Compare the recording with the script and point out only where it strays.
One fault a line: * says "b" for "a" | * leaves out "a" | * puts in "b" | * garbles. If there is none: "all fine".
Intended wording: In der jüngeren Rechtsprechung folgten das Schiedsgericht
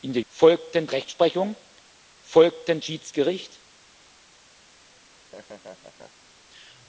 * says "folgten" for "jüngeren"
* leaves out "das"